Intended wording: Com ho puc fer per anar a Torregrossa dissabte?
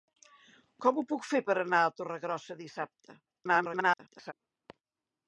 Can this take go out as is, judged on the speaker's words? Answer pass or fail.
fail